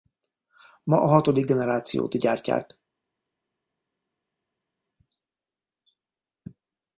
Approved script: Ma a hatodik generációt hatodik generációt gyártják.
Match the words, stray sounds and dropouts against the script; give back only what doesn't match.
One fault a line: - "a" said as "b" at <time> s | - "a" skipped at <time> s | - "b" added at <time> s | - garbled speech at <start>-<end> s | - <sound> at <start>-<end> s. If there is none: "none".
- "hatodik generációt" skipped at 2.2 s